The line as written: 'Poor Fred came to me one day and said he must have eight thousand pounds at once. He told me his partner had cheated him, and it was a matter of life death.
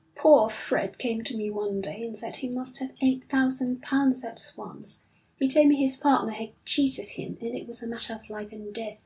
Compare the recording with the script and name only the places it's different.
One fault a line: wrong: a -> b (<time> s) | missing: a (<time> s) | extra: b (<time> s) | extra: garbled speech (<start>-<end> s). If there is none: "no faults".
extra: and (8.5 s)